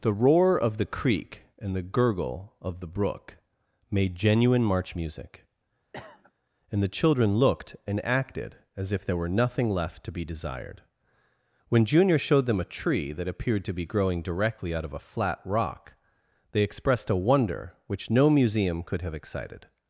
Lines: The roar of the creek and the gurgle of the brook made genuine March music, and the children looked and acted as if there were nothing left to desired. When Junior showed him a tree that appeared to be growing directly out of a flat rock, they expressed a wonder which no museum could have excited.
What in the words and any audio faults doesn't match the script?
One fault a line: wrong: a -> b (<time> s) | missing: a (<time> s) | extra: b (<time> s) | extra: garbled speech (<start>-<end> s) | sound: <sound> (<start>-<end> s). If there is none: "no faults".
sound: cough (5.9-6.3 s)
extra: be (10.1 s)
wrong: him -> them (12.5 s)